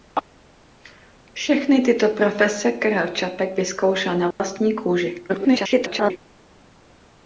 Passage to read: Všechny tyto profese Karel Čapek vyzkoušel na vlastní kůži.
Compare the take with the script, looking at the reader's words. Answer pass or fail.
fail